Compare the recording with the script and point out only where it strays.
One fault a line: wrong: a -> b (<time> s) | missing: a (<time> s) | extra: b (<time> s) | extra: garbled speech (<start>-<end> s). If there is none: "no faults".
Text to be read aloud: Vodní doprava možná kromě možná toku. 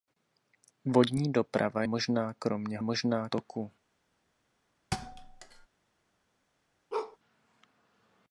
no faults